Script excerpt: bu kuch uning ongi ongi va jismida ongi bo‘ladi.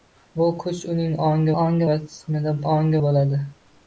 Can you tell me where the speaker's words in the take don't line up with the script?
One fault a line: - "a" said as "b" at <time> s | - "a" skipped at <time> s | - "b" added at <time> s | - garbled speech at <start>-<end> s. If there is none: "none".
none